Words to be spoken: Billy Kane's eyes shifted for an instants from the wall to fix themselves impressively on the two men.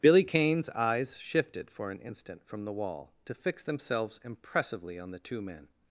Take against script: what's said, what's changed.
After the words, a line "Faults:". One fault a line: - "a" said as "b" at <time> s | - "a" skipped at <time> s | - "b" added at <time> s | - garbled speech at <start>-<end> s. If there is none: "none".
Billy Kane's eyes shifted for an instant from the wall to fix themselves impressively on the two men.
Faults:
- "instants" said as "instant" at 2.0 s